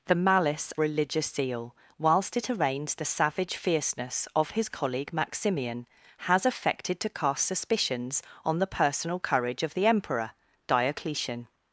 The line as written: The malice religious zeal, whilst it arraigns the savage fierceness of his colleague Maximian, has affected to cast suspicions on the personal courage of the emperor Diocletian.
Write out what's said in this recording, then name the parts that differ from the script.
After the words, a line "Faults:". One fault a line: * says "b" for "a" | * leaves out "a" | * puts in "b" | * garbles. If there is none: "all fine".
The malice religious zeal, whilst it arraigns the savage fierceness of his colleague Maximian, has affected to cast suspicions on the personal courage of the emperor Diocletian.
Faults:
all fine